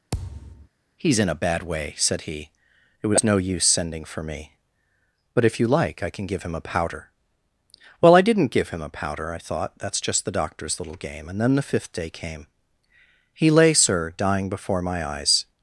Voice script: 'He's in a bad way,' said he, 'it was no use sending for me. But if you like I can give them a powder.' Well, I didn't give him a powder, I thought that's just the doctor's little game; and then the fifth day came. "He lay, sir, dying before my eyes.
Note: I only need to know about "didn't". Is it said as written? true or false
true